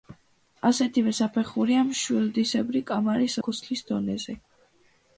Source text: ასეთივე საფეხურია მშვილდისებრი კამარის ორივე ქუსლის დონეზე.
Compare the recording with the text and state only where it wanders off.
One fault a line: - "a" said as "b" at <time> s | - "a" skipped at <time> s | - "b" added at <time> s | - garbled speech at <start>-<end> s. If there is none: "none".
- "ორივე" skipped at 3.4 s